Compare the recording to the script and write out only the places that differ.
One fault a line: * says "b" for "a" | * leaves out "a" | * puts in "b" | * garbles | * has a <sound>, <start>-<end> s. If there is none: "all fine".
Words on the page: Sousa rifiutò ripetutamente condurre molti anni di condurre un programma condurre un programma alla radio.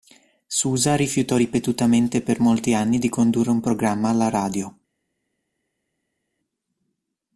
* says "per" for "condurre"
* leaves out "condurre un programma"